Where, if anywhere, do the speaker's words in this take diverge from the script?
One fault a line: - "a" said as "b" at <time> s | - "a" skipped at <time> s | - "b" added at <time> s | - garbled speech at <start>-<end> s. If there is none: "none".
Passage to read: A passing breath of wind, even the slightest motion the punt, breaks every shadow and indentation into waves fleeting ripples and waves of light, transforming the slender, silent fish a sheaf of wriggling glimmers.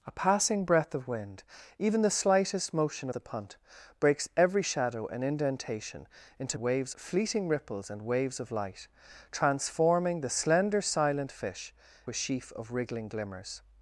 none